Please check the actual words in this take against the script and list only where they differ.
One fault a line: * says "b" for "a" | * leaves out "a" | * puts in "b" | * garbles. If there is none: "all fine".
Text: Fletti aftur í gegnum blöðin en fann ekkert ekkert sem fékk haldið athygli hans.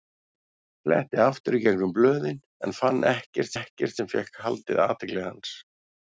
all fine